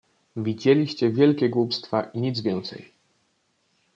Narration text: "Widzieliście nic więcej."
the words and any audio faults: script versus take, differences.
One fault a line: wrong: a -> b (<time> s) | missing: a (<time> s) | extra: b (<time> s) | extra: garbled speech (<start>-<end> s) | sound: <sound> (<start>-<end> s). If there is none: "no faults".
extra: wielkie głupstwa i (1.1 s)